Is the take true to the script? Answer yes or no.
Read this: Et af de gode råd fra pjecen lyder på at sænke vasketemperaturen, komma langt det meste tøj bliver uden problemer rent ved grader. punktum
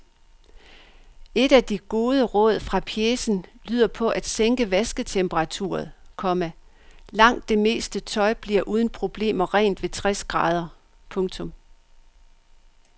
no